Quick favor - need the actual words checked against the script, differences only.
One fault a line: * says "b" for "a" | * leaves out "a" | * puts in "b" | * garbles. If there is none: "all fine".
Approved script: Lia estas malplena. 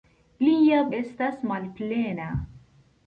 all fine